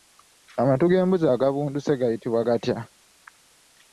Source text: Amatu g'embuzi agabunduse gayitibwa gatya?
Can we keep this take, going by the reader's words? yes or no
yes